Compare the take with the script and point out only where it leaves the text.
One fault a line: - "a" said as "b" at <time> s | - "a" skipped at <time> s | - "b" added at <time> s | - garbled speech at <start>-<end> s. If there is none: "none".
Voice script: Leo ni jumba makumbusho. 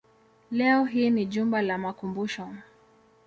- "hii" added at 0.8 s
- "la" added at 1.6 s